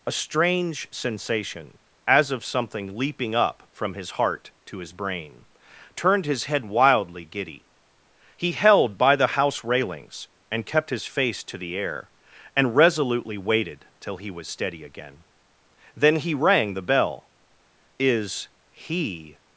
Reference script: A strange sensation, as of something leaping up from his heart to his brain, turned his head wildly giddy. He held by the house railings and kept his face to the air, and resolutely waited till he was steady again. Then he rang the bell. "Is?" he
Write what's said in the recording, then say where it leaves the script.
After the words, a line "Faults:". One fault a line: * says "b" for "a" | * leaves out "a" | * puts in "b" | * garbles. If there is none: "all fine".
A strange sensation, as of something leaping up from his heart to his brain, turned his head wildly giddy. He held by the house railings and kept his face to the air, and resolutely waited till he was steady again. Then he rang the bell. "Is?" he
Faults:
all fine